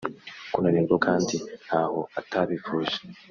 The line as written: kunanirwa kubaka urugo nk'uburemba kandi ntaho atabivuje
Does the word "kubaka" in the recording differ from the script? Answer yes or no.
yes